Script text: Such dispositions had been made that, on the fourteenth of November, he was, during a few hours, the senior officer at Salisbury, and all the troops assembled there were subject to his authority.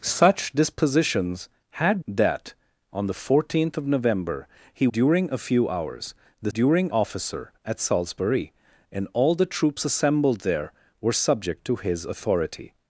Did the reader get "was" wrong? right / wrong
wrong